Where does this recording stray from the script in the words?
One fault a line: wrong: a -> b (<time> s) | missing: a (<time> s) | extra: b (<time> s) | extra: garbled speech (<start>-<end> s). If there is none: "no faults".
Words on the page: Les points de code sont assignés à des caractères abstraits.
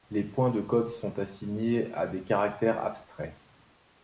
no faults